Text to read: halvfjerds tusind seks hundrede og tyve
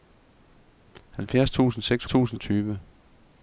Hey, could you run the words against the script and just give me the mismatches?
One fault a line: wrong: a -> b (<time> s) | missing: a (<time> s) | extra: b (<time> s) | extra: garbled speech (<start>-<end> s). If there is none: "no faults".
wrong: hundrede -> tusind (2.1 s)